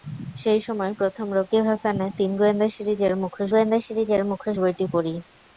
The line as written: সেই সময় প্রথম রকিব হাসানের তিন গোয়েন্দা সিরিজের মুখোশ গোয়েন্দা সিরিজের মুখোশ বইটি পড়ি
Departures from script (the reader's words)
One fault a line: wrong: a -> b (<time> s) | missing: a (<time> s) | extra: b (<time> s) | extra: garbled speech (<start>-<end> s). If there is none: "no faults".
no faults